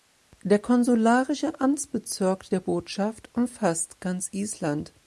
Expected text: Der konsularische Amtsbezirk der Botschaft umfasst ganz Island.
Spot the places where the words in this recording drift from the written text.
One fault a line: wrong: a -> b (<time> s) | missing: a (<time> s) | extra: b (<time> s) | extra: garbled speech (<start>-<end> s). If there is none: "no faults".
no faults